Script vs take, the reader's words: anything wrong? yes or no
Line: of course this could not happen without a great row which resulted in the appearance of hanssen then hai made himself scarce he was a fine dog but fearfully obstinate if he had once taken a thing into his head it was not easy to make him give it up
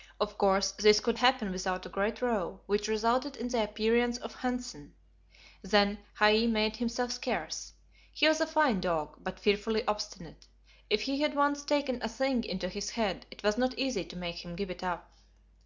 yes